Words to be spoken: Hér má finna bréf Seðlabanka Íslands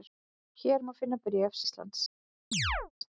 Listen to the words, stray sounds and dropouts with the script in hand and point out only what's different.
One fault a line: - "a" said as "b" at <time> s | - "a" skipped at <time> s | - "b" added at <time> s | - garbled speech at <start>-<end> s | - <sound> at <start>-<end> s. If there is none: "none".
- "Seðlabanka" skipped at 1.6 s
- chirp at 2.5-2.9 s